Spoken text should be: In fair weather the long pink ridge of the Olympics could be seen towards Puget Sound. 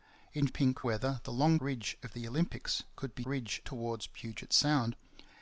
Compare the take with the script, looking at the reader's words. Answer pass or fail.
fail